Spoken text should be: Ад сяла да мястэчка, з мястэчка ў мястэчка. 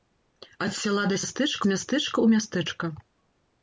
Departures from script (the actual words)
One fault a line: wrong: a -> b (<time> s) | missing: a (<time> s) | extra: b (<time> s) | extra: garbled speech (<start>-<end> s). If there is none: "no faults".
no faults